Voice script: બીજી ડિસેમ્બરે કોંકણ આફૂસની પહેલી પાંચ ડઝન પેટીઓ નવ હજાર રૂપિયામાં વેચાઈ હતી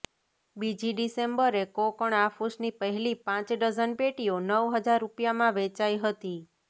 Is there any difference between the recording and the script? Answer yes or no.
no